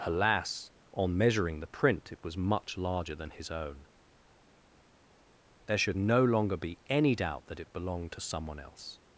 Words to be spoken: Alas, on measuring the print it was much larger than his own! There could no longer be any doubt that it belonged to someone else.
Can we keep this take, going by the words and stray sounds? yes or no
no